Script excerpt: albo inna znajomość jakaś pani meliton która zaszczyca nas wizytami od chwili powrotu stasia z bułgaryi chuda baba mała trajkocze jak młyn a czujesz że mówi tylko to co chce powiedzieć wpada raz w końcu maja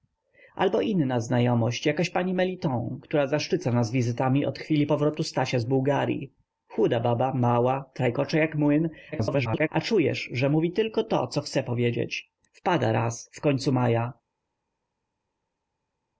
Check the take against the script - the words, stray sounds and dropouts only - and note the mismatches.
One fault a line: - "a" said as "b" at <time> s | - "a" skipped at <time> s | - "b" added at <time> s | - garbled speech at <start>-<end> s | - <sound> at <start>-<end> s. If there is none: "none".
- garbled speech at 9.1-9.7 s